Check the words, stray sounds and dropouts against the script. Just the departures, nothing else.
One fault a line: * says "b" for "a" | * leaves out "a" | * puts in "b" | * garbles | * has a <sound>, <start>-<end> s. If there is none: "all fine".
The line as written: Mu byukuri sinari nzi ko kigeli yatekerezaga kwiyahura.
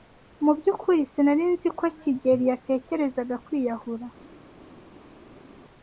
all fine